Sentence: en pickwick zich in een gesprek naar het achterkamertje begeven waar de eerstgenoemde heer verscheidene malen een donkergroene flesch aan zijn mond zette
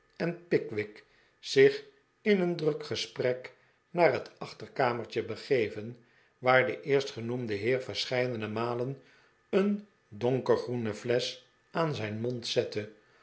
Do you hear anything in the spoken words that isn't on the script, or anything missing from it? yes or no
yes